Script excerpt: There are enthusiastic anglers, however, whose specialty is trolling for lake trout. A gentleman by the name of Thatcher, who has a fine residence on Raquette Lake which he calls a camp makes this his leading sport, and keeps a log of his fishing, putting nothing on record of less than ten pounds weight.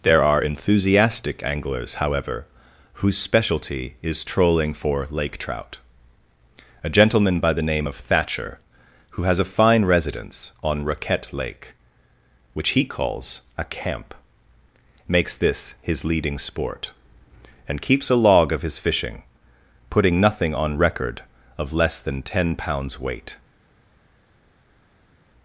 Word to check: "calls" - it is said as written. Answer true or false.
true